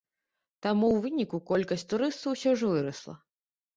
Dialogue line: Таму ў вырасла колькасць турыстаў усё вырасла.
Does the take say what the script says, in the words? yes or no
no